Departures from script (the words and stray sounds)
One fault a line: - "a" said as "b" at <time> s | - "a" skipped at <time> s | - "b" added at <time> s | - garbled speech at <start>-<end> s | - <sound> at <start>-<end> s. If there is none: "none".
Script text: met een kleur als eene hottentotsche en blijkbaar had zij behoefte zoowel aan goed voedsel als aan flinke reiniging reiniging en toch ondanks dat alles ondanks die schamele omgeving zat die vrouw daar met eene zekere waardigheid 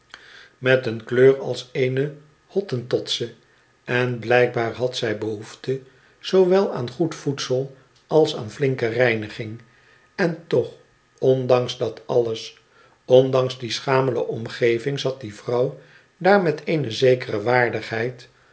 - "reiniging" skipped at 9.6 s